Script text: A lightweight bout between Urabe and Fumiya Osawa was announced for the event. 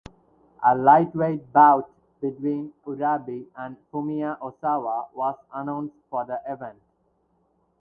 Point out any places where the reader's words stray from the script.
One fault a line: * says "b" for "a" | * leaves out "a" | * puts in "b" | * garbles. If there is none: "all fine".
all fine